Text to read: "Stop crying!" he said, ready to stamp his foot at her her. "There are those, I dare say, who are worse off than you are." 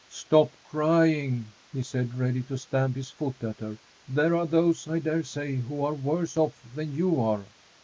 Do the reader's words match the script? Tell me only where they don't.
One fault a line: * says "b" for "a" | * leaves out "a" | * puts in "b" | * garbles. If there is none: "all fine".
* leaves out "her"